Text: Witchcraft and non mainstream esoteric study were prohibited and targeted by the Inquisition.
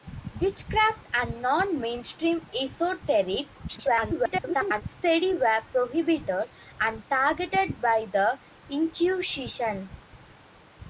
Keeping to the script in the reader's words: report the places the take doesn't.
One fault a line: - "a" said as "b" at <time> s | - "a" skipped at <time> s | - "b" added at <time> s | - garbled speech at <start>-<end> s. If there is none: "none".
- garbled speech at 3.7-4.8 s